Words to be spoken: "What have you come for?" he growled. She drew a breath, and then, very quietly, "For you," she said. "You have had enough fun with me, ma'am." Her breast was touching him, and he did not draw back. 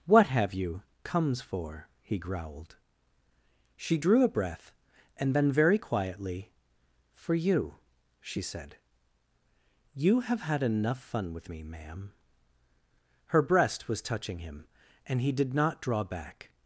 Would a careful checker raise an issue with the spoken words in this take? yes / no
yes